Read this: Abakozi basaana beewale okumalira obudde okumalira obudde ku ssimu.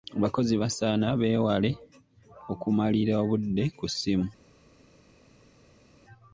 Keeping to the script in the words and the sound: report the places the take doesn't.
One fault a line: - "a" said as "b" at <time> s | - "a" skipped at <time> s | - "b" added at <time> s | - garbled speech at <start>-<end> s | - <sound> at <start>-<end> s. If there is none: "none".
- "okumalira obudde" skipped at 3.6 s